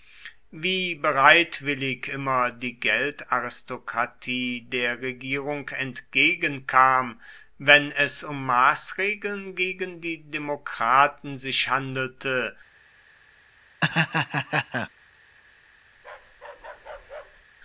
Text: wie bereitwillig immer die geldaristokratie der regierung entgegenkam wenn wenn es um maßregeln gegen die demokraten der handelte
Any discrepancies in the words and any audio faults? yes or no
yes